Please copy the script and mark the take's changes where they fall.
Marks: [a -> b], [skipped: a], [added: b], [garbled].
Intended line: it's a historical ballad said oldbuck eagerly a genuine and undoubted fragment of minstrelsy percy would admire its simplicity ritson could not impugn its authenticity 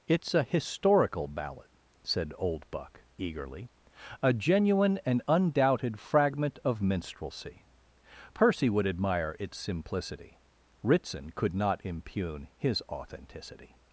it's a historical ballad said oldbuck eagerly a genuine and undoubted fragment of minstrelsy percy would admire its simplicity ritson could not impugn [its -> his] authenticity